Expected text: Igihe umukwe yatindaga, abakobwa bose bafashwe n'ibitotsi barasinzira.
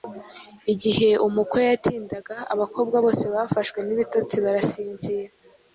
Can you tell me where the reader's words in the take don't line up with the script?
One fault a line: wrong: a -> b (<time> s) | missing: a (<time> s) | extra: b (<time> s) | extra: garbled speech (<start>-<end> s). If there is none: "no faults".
no faults